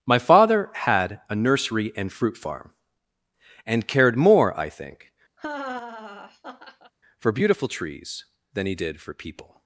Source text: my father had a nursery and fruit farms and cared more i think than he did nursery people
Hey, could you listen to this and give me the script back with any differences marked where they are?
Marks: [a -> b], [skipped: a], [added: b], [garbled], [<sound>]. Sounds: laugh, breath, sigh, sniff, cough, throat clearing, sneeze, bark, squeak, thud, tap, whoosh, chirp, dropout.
my father had a nursery and fruit [farms -> farm] and cared more i think [laugh] [added: for beautiful trees] than he did [nursery -> for] people